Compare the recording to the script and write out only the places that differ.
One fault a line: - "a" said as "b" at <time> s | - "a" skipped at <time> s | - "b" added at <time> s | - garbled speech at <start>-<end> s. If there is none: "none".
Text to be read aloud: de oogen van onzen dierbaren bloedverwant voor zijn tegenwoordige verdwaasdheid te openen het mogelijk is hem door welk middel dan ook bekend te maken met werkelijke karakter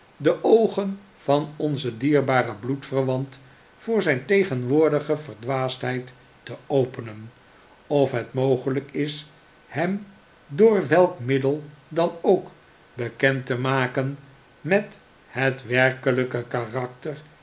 - "of" added at 7.9 s
- "het" added at 15.2 s